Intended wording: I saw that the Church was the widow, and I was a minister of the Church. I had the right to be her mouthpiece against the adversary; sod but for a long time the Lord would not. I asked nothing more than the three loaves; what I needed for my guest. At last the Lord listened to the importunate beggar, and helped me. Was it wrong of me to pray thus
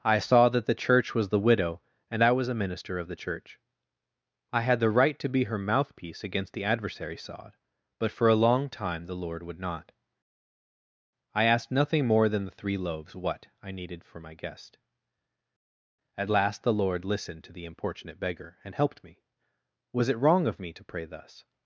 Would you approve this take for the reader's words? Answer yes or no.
yes